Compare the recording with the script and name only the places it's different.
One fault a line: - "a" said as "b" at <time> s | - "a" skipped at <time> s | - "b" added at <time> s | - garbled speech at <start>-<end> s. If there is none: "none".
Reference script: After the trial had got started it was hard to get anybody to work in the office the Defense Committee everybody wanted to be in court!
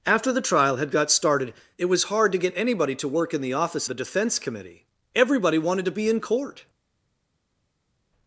none